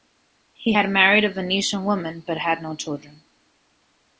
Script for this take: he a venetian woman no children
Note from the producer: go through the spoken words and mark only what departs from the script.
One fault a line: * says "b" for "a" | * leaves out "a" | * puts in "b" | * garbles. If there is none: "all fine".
* puts in "had married"
* puts in "but had"